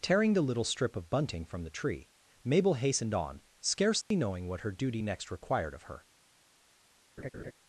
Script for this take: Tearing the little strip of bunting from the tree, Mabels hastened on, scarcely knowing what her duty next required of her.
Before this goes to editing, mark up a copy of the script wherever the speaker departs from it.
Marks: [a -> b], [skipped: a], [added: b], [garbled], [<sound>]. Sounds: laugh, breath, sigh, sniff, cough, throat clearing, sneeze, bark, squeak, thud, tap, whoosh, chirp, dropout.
Tearing the little strip of bunting from the tree, [Mabels -> Mabel] hastened on, scarcely [dropout] knowing what her duty next required of her. [laugh]